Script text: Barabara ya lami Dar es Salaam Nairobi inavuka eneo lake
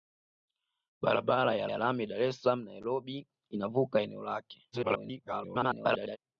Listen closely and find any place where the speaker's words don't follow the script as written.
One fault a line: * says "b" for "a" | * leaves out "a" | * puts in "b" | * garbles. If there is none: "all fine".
* puts in "ya"
* garbles